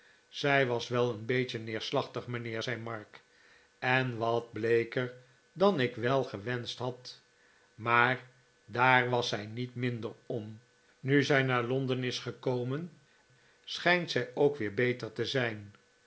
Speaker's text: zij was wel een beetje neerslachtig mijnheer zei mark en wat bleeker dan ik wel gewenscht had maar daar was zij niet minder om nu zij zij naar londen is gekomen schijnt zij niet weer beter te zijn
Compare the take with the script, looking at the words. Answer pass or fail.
fail